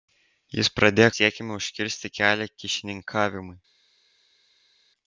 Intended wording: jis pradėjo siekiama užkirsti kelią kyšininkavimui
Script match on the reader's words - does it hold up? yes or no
yes